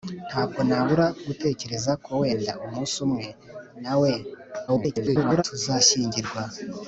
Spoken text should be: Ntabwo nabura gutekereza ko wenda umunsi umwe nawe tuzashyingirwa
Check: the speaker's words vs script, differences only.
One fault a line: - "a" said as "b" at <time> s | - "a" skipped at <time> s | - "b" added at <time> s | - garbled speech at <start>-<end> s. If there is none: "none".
- garbled speech at 4.7-5.4 s